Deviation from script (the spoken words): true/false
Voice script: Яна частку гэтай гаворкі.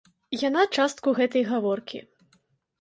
false